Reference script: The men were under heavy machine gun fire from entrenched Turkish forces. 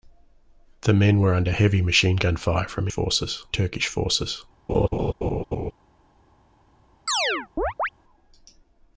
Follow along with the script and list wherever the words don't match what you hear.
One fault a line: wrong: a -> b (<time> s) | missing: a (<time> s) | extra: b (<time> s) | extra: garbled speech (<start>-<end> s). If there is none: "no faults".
wrong: entrenched -> forces (2.9 s)